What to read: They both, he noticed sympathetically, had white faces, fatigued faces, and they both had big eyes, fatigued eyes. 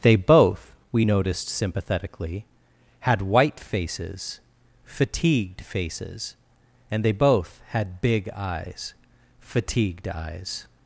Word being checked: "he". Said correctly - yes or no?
no